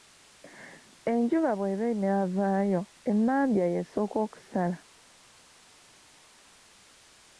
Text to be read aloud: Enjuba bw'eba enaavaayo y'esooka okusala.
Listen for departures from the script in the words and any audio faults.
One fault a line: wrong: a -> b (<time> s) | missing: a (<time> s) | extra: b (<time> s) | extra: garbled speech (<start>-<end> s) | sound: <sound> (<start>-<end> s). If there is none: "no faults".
extra: emmambya (3.1 s)